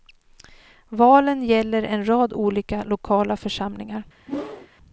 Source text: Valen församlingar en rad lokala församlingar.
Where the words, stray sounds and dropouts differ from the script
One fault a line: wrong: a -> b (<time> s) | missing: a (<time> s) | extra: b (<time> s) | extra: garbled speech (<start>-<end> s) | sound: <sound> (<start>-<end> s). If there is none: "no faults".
wrong: församlingar -> gäller (1.4 s)
extra: olika (2.3 s)
sound: whoosh (4.3-4.7 s)